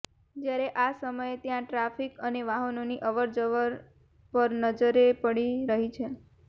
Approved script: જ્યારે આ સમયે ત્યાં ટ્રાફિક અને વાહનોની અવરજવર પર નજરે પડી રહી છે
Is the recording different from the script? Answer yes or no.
no